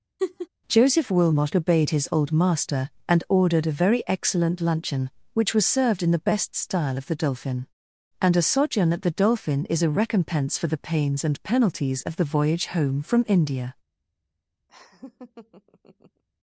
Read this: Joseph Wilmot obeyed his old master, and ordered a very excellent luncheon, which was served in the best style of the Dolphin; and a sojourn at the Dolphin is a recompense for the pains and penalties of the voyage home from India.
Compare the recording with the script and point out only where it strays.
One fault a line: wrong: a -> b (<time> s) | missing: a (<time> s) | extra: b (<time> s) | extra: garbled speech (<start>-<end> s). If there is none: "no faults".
no faults